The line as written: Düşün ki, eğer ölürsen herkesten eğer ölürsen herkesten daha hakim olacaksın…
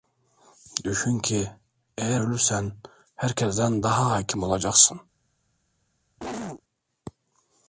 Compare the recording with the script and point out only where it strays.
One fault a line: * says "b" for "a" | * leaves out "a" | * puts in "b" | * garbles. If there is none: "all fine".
* leaves out "eğer ölürsen herkesten"